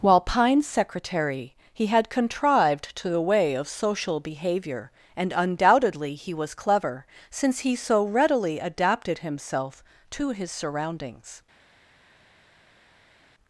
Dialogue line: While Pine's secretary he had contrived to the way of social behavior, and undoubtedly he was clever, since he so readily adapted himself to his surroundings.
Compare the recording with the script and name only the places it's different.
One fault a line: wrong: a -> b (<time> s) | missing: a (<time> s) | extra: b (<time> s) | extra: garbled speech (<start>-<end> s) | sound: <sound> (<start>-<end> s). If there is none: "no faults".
no faults